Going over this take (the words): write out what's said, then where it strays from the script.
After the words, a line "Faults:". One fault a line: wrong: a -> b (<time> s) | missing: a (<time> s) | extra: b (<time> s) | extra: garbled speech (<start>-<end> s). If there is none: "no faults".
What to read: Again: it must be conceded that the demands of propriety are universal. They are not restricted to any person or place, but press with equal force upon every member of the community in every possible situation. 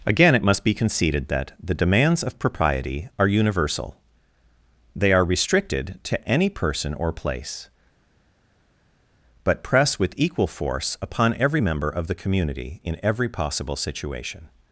Again: it must be conceded that the demands of propriety are universal. They are restricted to any person or place, but press with equal force upon every member of the community in every possible situation.
Faults:
missing: not (5.2 s)